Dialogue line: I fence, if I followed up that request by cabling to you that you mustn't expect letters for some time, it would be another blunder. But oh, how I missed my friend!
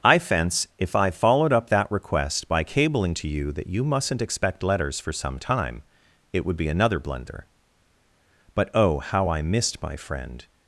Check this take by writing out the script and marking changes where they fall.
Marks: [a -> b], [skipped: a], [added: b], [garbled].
I fence, if I followed up that request by cabling to you that you mustn't expect letters for some time, it would be another blunder. But oh, how I missed my friend!